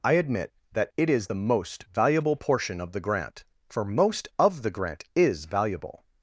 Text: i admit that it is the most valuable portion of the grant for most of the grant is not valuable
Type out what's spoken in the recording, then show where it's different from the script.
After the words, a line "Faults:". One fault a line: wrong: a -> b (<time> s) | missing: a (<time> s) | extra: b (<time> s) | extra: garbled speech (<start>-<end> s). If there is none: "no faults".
i admit that it is the most valuable portion of the grant for most of the grant is valuable
Faults:
missing: not (5.4 s)